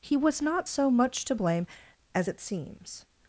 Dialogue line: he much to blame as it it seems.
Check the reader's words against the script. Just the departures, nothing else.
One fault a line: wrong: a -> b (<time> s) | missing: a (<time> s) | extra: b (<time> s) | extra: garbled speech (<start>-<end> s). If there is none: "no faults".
extra: was not so (0.2 s)
missing: it (2.4 s)